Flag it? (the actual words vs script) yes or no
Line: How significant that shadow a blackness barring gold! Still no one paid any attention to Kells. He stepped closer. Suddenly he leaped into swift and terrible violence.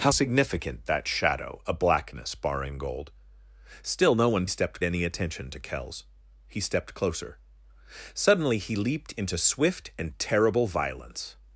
yes